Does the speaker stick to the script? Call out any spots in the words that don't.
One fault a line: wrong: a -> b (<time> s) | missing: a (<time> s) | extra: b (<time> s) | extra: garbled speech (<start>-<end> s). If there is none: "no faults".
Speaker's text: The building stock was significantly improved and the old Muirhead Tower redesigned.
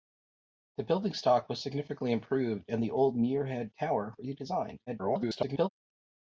extra: garbled speech (4.9-5.7 s)